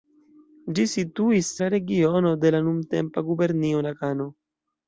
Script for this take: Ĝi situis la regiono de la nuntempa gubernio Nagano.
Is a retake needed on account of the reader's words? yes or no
no